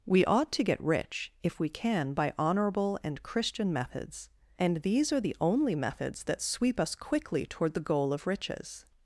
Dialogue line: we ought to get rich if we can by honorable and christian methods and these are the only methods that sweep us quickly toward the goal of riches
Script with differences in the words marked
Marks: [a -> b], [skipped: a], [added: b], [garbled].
we ought to get rich if we can by honorable and christian methods and these are the only methods that sweep us quickly toward the goal of riches